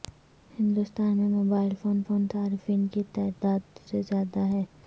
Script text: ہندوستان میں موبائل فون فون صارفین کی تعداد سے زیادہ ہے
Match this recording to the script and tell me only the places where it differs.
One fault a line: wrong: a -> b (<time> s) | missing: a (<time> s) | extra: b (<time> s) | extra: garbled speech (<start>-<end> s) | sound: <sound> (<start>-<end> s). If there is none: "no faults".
no faults